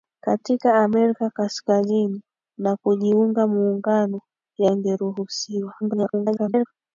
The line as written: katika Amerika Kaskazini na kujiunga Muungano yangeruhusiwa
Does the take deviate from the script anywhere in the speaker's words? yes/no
yes